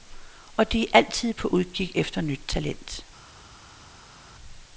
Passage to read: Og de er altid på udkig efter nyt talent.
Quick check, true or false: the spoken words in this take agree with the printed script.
true